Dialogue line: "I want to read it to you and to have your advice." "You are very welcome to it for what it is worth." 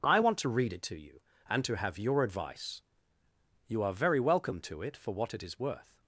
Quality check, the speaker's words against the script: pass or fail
pass